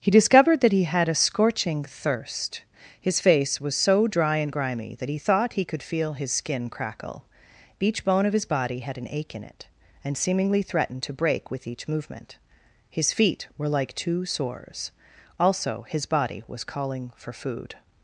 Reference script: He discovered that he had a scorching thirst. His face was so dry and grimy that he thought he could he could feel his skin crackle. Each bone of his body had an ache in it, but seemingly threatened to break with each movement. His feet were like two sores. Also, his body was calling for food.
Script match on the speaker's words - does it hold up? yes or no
no